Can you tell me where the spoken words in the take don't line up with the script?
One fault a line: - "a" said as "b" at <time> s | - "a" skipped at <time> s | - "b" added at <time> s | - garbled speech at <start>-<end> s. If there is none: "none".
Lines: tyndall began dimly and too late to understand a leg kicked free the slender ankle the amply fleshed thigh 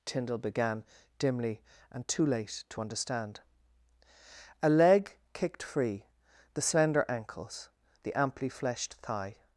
- "ankle" said as "ankles" at 7.1 s